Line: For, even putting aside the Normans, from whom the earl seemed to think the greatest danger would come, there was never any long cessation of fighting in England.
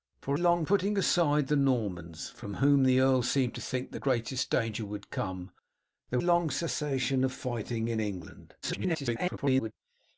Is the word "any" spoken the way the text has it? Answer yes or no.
no